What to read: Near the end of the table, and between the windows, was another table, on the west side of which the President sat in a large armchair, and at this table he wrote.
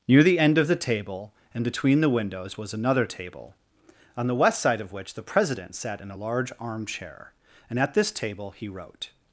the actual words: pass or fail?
pass